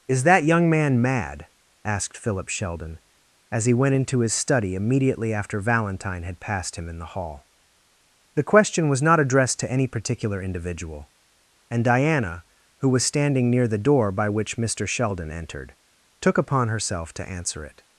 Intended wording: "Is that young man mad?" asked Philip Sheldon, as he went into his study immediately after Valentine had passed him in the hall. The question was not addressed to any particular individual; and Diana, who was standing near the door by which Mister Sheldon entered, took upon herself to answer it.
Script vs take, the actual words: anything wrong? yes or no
no